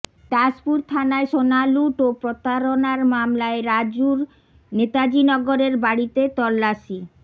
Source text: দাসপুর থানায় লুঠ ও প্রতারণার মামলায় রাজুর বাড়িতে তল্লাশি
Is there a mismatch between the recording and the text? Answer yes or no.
yes